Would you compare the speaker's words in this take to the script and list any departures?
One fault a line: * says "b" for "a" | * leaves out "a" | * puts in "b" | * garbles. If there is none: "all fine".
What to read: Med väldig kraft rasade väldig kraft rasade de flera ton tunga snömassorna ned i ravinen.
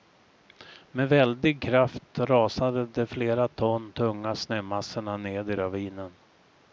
* leaves out "väldig kraft rasade"